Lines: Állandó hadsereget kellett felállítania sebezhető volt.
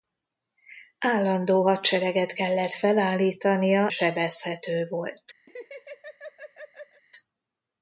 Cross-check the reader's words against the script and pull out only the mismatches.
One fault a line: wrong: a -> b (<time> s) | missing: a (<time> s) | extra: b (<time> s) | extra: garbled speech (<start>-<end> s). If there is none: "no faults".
no faults